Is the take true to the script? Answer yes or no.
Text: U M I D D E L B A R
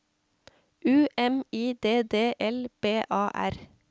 no